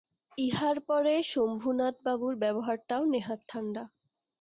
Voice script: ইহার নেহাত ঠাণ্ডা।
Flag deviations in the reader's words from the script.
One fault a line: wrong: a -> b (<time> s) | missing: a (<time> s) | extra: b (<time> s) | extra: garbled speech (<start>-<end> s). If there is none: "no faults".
extra: পরে শম্ভুনাথবাবুর ব্যবহারটাও (0.9 s)